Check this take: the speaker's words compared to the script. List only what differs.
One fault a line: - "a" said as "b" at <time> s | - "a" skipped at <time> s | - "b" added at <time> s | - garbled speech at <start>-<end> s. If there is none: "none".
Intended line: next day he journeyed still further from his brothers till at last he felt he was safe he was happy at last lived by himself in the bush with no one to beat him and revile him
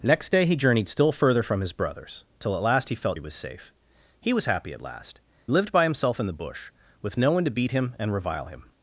none